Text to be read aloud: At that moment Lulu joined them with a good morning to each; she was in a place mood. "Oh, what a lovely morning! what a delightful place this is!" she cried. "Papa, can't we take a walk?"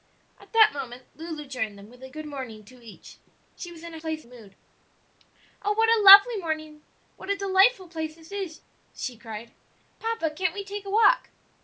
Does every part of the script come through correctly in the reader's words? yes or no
yes